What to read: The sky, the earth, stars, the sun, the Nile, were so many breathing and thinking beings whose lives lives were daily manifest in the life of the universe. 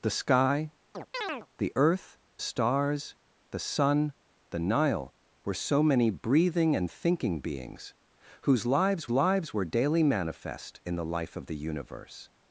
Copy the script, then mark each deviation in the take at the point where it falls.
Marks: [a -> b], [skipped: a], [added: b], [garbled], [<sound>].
The sky, [chirp] the earth, stars, the sun, the Nile, were so many breathing and thinking beings whose lives lives were daily manifest in the life of the universe.